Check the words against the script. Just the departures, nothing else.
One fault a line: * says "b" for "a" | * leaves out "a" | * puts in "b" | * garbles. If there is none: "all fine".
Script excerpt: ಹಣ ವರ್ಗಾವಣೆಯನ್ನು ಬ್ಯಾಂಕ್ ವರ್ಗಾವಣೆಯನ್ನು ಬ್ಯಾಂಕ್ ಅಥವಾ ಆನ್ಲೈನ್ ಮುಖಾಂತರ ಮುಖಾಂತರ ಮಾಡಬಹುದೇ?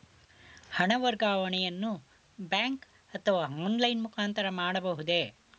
* leaves out "ವರ್ಗಾವಣೆಯನ್ನು ಬ್ಯಾಂಕ್"
* leaves out "ಮುಖಾಂತರ"